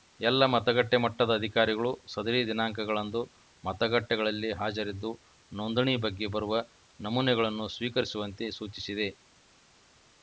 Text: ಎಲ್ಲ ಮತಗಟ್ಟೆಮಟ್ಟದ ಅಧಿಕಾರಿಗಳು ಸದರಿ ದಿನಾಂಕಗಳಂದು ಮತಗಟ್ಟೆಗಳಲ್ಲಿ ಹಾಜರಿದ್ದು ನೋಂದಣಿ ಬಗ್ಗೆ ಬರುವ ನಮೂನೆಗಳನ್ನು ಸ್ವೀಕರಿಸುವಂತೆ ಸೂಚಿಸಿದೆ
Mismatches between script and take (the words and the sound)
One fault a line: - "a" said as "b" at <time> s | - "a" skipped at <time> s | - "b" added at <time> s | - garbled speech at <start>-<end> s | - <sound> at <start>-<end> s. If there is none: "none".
none